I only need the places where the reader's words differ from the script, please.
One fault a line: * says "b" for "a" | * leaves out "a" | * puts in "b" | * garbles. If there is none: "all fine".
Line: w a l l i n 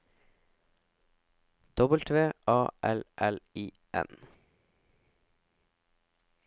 all fine